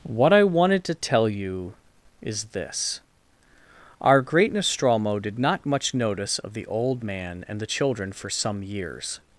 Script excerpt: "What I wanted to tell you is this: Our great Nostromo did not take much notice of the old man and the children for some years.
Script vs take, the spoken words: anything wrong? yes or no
yes